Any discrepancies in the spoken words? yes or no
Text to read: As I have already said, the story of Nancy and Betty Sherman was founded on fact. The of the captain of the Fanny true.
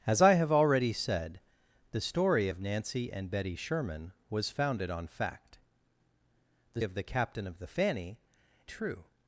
no